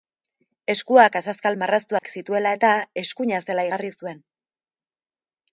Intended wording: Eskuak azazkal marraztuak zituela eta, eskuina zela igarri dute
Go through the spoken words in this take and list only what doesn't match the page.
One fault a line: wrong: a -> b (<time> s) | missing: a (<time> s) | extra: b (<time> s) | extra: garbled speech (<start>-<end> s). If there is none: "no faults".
wrong: dute -> zuen (4.0 s)